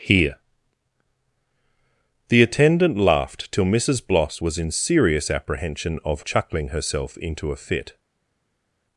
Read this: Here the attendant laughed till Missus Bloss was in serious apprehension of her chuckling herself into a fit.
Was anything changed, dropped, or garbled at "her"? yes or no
yes